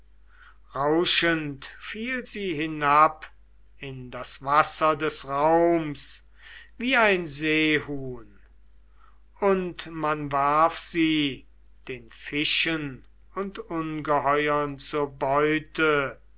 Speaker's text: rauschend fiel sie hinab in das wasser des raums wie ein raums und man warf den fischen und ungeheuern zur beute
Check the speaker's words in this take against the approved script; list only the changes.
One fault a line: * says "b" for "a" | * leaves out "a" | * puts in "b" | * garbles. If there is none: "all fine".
* says "seehuhn" for "raums"
* puts in "sie"